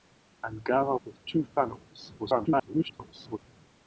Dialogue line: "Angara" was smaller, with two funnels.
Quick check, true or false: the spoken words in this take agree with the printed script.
false